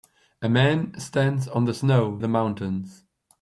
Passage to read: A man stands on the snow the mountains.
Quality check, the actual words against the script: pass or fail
pass